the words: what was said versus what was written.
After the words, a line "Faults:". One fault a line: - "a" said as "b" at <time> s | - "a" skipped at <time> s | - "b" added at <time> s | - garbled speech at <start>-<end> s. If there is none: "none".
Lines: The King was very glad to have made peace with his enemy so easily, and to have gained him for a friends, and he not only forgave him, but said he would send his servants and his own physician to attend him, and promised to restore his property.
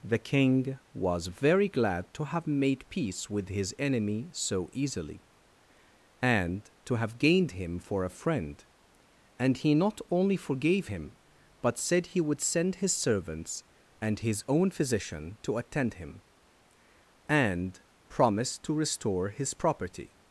The King was very glad to have made peace with his enemy so easily, and to have gained him for a friend, and he not only forgave him, but said he would send his servants and his own physician to attend him, and promised to restore his property.
Faults:
- "friends" said as "friend" at 8.1 s